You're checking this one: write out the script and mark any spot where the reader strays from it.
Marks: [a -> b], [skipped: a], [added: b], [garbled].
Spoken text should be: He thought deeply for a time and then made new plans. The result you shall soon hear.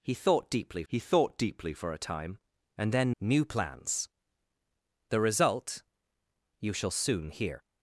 He thought deeply [added: he thought deeply] for a time and then [skipped: made] new plans. The result you shall soon hear.